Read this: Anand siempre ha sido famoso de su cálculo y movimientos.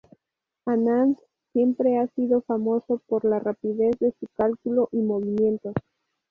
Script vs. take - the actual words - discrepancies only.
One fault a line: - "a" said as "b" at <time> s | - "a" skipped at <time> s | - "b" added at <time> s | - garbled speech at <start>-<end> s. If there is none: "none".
- "por la rapidez" added at 3.1 s